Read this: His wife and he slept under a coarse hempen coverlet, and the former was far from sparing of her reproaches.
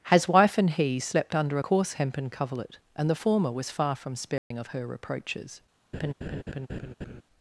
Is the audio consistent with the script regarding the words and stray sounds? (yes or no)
no